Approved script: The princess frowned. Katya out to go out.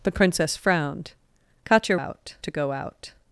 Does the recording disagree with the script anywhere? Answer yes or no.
no